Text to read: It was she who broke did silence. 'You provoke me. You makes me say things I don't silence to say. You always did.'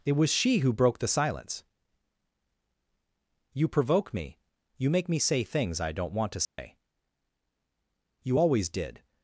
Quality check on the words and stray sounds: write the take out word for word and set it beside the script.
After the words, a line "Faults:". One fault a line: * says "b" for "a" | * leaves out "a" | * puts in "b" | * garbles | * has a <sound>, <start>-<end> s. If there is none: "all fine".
It was she who broke the silence. 'You provoke me. You make me say things I don't want to say. You always did.'
Faults:
* says "the" for "did"
* says "make" for "makes"
* says "want" for "silence"
* has a dropout, 6.4-6.6 s